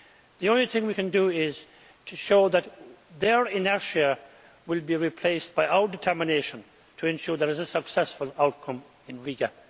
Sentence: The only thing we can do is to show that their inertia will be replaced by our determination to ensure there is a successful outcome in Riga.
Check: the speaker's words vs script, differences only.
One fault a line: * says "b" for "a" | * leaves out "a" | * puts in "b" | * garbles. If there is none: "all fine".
all fine